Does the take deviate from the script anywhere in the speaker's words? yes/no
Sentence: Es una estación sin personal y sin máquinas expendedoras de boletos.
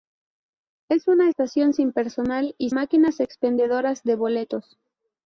yes